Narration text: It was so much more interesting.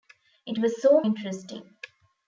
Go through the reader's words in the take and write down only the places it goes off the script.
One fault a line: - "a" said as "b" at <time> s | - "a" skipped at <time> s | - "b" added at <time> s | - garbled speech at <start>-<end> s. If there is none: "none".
- "much more" skipped at 1.0 s